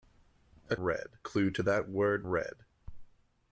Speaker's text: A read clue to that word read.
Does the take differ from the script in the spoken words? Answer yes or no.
no